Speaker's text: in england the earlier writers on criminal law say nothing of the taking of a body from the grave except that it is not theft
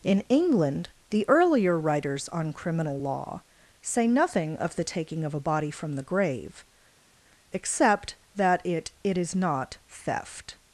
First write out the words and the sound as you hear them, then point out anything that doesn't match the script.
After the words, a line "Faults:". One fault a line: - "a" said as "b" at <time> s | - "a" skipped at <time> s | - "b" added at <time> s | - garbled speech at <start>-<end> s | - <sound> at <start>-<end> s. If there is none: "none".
in england the earlier writers on criminal law say nothing of the taking of a body from the grave except that it it is not theft
Faults:
- "it" added at 9.0 s